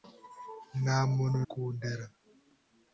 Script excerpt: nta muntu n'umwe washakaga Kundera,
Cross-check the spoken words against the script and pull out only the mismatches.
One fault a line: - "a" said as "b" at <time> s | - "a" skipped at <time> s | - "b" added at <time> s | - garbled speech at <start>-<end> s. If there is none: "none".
- "n'umwe washakaga" skipped at 1.4 s